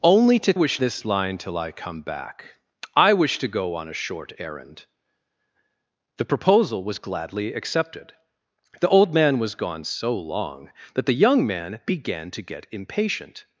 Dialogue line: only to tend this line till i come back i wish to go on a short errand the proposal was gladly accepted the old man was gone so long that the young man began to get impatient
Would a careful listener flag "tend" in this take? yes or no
yes